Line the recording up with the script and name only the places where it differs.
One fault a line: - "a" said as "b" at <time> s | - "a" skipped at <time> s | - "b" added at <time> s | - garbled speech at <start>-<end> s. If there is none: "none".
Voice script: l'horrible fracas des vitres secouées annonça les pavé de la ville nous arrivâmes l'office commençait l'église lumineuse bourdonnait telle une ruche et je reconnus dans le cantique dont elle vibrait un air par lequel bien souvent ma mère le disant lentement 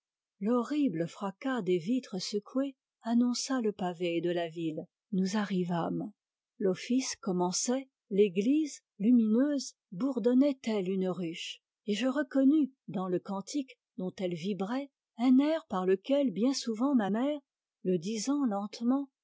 - "les" said as "le" at 3.6 s